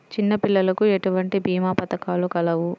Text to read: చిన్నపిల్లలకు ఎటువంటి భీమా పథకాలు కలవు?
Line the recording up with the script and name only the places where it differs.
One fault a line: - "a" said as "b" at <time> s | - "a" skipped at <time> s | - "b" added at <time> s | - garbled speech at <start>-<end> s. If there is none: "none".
none